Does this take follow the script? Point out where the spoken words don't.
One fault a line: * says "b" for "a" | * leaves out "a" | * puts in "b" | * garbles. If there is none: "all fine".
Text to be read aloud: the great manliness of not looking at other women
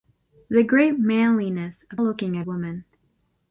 * leaves out "not"
* leaves out "other"